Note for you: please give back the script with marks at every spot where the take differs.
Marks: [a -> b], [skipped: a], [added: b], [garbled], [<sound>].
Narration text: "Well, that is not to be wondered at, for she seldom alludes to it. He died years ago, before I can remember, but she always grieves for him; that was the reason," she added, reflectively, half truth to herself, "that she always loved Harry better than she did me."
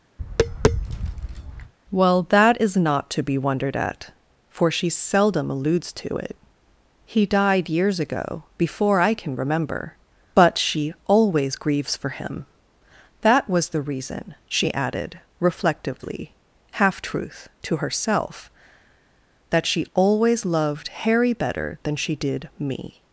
[tap] "Well, that is not to be wondered at, for she seldom alludes to it. He died years ago, before I can remember, but she always grieves for him; that was the reason," she added, reflectively, half truth to herself, "that she always loved Harry better than she did me."